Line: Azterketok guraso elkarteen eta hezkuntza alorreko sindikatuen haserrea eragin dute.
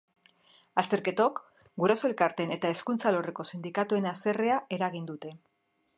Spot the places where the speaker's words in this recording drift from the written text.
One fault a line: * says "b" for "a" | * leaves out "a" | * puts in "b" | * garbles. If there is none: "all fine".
all fine